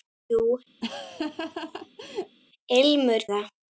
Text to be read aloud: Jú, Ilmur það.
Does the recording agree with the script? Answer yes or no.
yes